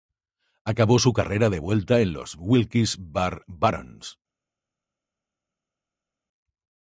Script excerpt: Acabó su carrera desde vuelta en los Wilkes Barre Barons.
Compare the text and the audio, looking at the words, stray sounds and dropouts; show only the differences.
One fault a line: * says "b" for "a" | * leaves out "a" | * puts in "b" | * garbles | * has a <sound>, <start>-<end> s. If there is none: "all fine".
* says "de" for "desde"